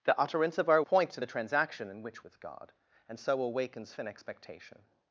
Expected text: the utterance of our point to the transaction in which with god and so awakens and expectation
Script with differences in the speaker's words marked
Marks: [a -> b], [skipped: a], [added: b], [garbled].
the utterance of our point to the transaction in which with god and so awakens and expectation